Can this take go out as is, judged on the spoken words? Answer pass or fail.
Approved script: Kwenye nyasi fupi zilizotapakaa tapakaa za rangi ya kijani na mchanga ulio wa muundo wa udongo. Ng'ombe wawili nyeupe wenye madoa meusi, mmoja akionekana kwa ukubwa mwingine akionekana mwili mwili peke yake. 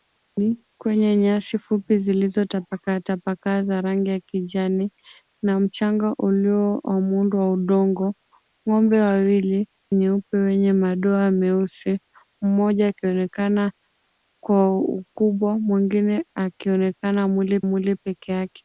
pass